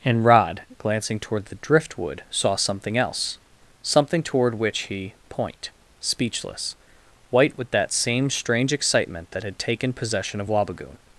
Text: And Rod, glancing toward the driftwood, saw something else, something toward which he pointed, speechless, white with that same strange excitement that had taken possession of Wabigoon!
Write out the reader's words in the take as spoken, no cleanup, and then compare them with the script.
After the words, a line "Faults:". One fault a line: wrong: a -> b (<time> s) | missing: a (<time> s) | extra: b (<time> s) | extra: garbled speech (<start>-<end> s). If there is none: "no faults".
And Rod, glancing toward the driftwood, saw something else, something toward which he point, speechless, white with that same strange excitement that had taken possession of Wabigoon!
Faults:
wrong: pointed -> point (5.3 s)